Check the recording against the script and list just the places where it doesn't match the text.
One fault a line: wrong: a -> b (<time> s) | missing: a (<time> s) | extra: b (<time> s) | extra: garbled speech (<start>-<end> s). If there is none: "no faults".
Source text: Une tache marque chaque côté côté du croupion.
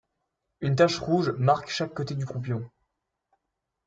extra: rouge (1.0 s)
missing: côté (2.1 s)